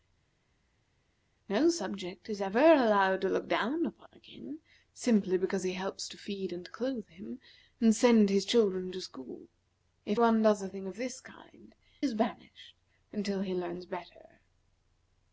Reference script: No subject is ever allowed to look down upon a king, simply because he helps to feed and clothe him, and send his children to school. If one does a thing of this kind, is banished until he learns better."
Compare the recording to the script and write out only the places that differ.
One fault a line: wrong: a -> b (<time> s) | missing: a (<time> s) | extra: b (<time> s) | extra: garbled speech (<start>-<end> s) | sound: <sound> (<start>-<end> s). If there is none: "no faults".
no faults